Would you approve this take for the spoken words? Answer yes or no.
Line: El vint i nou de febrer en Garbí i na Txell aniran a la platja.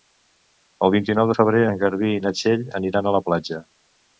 yes